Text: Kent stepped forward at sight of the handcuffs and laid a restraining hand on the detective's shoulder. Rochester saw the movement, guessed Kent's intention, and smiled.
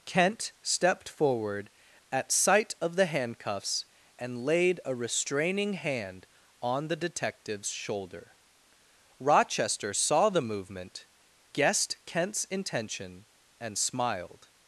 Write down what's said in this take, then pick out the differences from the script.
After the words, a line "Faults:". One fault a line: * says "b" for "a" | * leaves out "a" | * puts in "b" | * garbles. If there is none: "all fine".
Kent stepped forward at sight of the handcuffs and laid a restraining hand on the detective's shoulder. Rochester saw the movement, guessed Kent's intention, and smiled.
Faults:
all fine